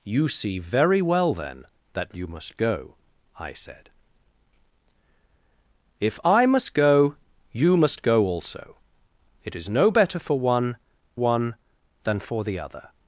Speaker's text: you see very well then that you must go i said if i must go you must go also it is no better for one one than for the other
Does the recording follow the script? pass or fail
pass